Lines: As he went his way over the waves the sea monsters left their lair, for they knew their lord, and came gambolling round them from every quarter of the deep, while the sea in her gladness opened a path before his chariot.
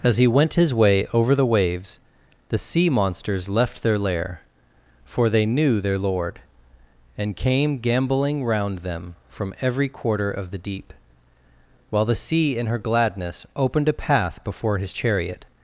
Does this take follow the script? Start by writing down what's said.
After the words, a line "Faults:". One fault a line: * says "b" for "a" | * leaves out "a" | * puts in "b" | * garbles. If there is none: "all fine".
As he went his way over the waves the sea monsters left their lair, for they knew their lord, and came gambolling round them from every quarter of the deep, while the sea in her gladness opened a path before his chariot.
Faults:
all fine